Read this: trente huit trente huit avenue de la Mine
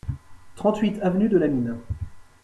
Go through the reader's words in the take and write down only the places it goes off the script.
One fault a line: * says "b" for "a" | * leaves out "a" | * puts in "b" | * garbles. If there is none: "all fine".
* leaves out "trente huit"